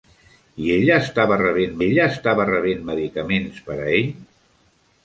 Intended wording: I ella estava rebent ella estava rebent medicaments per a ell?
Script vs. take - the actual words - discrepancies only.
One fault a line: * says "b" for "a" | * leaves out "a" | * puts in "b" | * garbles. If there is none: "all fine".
all fine